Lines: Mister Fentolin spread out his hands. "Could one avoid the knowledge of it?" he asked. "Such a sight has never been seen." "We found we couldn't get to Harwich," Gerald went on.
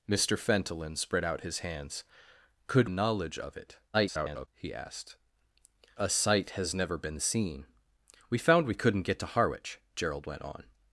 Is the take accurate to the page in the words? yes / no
no